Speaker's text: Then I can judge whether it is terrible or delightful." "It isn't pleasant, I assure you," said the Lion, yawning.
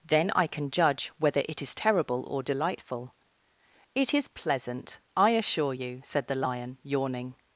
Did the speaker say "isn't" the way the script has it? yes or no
no